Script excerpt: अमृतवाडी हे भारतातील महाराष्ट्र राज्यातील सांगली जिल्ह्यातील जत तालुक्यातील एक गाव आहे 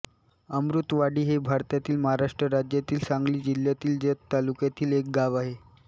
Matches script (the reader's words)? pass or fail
pass